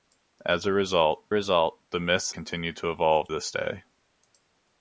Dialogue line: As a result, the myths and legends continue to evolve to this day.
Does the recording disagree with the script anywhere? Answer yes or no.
yes